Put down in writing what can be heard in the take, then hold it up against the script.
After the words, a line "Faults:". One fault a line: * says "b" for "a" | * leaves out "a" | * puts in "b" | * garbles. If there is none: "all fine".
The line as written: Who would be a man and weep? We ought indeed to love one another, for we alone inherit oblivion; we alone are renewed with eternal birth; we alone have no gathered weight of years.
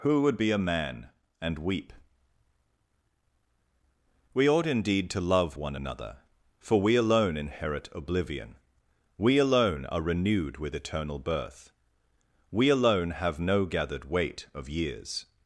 Who would be a man and weep? We ought indeed to love one another, for we alone inherit oblivion; we alone are renewed with eternal birth; we alone have no gathered weight of years.
Faults:
all fine